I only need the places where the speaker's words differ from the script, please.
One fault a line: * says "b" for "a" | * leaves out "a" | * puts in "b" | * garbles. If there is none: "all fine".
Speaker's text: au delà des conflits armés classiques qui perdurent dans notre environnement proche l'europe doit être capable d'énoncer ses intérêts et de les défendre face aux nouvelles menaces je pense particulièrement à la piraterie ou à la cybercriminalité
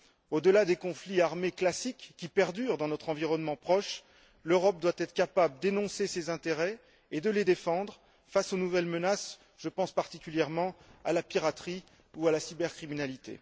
all fine